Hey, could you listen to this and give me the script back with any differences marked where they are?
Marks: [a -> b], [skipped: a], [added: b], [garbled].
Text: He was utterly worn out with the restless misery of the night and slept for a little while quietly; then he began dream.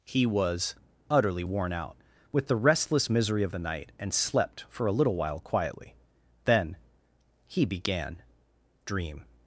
He was utterly worn out with the restless misery of the night and slept for a little while quietly; then he began dream.